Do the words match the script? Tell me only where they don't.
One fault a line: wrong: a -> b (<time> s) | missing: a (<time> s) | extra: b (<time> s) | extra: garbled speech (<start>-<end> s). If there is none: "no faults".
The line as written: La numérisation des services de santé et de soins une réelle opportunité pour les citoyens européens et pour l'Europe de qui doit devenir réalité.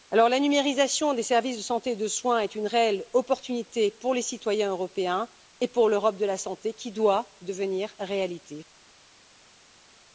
extra: est (2.4 s)
extra: la santé (6.2 s)